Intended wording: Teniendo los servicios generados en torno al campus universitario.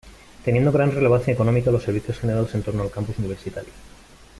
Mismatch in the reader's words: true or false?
true